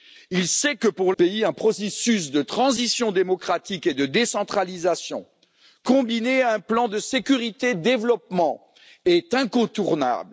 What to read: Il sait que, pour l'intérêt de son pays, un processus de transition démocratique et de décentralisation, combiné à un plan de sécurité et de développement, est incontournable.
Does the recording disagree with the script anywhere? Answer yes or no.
yes